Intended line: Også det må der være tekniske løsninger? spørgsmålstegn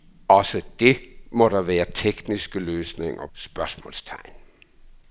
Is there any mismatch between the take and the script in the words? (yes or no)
no